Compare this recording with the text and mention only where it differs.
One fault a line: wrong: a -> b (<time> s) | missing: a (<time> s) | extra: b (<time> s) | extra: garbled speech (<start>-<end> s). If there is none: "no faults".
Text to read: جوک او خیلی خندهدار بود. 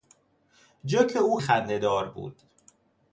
missing: خیلی (1.4 s)